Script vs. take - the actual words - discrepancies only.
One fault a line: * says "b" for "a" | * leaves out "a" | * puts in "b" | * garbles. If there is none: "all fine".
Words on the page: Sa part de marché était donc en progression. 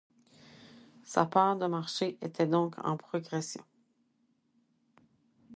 all fine